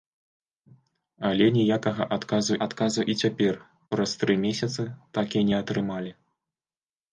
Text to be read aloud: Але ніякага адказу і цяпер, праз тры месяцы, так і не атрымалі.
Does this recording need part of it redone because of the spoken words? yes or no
yes